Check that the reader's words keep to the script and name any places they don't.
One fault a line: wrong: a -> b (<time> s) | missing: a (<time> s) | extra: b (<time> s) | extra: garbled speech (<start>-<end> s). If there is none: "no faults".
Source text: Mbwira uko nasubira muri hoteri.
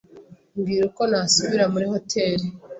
no faults